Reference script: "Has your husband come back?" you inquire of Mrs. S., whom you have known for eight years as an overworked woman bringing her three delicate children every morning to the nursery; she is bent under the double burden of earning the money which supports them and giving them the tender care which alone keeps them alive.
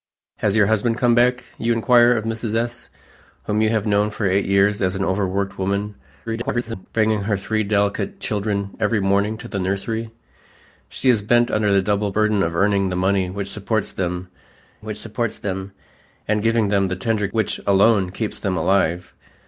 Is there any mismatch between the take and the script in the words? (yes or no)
yes